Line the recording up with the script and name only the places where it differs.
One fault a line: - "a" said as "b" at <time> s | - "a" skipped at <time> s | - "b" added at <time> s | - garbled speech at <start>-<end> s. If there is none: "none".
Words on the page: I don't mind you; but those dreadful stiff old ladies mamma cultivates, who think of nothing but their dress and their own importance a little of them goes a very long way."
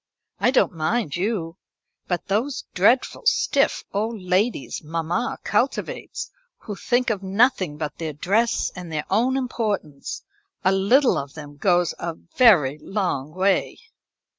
none